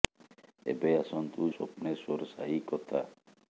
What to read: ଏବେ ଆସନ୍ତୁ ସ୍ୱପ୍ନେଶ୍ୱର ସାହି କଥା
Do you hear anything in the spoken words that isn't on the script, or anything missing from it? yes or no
no